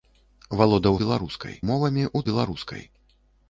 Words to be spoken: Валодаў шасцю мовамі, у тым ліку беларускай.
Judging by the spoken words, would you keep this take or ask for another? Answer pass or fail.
fail